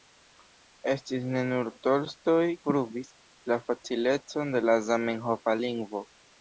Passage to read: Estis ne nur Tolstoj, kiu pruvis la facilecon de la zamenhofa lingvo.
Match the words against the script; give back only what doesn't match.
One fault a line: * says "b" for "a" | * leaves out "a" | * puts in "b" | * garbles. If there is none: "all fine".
* leaves out "kiu"